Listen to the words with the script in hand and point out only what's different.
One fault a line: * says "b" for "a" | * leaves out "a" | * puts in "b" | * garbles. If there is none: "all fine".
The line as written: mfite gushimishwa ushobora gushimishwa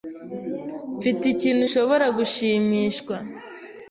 * says "ikintu" for "gushimishwa"